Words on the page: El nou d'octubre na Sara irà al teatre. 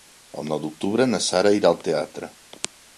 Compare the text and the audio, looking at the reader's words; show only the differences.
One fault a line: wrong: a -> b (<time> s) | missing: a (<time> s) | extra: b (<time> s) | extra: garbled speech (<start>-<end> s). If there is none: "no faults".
no faults